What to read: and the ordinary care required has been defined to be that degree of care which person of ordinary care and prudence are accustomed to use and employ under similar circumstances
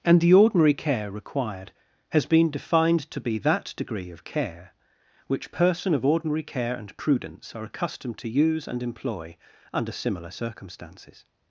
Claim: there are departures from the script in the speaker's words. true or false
false